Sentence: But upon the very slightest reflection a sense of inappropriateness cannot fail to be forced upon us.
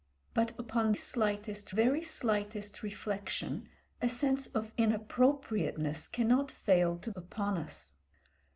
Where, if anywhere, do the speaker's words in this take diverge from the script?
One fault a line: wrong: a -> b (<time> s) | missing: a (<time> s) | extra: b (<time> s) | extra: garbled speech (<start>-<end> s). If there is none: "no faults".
wrong: the -> slightest (1.0 s)
missing: be forced (7.1 s)